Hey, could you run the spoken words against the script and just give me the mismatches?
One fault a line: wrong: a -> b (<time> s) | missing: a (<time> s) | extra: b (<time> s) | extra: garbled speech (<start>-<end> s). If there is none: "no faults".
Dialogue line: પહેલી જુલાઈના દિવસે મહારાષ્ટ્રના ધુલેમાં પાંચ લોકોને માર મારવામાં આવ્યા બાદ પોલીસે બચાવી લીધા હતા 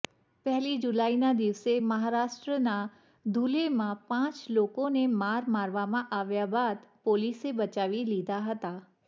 no faults